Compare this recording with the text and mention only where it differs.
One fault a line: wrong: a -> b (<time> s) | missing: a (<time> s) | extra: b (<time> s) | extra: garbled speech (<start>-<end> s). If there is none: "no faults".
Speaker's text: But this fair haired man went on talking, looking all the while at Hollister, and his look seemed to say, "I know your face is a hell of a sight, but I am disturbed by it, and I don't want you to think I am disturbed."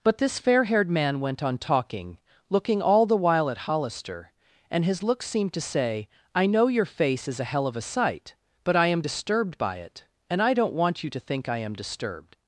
no faults